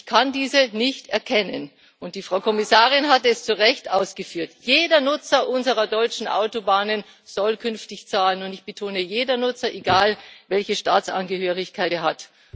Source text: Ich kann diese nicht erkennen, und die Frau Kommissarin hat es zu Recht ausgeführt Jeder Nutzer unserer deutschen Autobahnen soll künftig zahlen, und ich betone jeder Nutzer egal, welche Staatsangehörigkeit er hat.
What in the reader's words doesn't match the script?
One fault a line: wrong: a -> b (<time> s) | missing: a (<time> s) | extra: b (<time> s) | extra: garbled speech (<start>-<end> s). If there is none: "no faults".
no faults